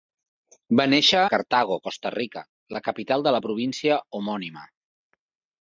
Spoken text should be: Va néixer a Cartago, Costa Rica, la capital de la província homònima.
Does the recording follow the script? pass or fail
fail